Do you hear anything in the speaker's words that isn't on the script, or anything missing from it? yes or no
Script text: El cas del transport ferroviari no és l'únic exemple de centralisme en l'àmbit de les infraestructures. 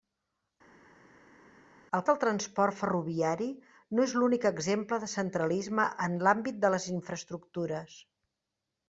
yes